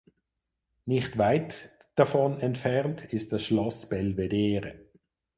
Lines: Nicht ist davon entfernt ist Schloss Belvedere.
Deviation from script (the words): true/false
true